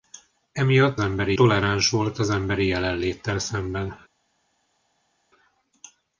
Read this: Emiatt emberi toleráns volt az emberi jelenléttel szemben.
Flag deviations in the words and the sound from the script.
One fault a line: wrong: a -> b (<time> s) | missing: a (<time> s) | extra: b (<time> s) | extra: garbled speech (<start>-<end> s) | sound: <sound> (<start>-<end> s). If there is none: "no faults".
no faults